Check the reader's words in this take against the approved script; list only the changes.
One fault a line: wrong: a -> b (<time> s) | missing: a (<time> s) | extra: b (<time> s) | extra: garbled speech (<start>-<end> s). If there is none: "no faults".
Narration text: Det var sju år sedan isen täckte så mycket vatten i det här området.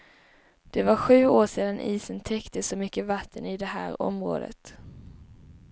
no faults